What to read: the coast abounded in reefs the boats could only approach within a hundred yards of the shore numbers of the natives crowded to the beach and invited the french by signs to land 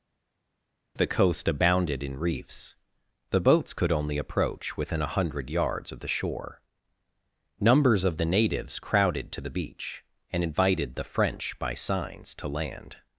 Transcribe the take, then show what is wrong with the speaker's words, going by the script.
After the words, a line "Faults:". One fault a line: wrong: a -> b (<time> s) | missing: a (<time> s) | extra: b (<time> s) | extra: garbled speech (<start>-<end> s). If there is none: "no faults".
the coast abounded in reefs the boats could only approach within a hundred yards of the shore numbers of the natives crowded to the beach and invited the french by signs to land
Faults:
no faults